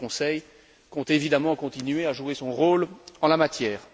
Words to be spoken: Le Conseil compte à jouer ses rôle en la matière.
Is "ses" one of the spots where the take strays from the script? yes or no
yes